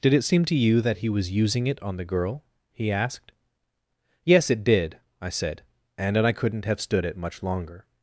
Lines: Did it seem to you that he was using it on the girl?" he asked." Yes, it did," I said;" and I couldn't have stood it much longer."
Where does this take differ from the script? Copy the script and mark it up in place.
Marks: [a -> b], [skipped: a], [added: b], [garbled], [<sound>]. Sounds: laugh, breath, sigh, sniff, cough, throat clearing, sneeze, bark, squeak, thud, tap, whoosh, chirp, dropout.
Did it seem to you that he was using it on the girl?" he asked." Yes, it did," I said;" and I couldn't have stood it much longer."